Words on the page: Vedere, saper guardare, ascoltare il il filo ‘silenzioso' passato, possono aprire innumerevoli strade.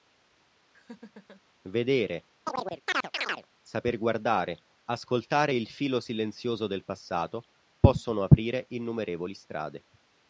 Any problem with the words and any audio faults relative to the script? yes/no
yes